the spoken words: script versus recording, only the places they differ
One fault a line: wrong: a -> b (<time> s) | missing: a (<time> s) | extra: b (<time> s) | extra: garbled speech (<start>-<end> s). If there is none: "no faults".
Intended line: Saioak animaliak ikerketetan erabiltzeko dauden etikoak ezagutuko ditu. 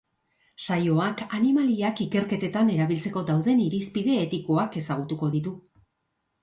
extra: irizpide (3.7 s)